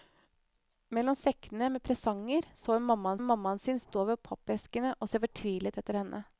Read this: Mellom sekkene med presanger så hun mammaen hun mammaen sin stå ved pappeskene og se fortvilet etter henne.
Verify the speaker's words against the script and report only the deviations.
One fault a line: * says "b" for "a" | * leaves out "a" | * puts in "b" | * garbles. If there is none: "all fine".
all fine